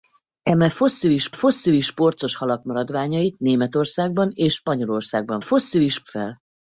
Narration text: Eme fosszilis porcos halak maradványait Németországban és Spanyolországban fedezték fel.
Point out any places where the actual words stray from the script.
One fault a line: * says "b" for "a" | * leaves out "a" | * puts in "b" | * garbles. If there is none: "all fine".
* puts in "fosszilis"
* says "fosszilis" for "fedezték"